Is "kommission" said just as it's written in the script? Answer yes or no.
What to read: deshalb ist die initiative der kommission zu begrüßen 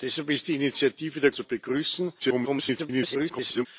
no